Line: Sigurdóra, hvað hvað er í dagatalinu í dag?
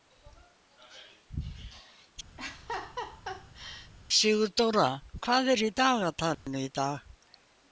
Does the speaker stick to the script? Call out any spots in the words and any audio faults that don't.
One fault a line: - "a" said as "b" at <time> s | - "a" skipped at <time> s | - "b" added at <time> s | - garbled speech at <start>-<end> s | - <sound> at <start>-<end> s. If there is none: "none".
- laugh at 2.4-3.9 s
- "hvað" skipped at 5.5 s
- dropout at 6.3-6.5 s